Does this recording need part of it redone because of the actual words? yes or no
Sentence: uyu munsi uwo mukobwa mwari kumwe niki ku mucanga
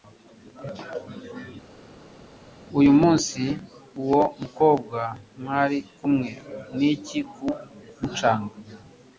no